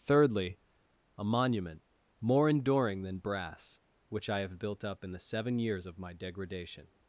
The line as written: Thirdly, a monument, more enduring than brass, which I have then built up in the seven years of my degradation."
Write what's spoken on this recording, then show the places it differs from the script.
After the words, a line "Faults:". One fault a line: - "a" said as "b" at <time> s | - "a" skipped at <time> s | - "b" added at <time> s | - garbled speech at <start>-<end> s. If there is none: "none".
Thirdly, a monument, more enduring than brass, which I have built up in the seven years of my degradation."
Faults:
- "then" skipped at 4.6 s